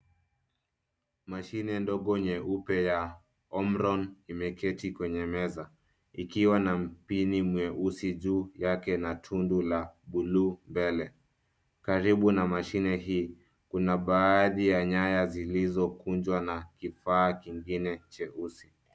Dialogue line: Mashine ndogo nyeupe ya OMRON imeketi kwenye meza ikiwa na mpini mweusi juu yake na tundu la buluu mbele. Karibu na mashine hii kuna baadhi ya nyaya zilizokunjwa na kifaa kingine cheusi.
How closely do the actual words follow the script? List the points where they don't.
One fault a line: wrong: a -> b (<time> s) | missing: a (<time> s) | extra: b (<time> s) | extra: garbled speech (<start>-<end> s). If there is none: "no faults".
no faults